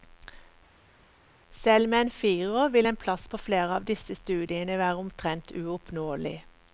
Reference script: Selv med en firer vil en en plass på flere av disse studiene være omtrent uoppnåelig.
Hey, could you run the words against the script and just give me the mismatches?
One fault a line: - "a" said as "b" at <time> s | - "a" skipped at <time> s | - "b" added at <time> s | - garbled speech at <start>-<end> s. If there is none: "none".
- "en" skipped at 3.0 s